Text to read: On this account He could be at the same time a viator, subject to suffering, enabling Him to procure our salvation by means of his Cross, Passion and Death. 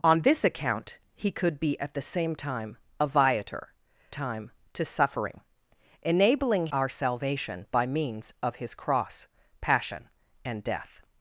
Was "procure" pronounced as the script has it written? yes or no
no